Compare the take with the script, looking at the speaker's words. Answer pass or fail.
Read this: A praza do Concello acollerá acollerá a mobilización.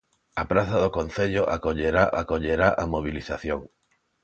pass